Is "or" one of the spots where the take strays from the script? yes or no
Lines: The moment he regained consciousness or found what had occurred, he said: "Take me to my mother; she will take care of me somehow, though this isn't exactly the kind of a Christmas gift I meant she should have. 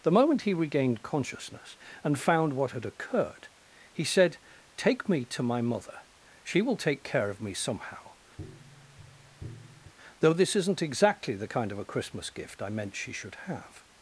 yes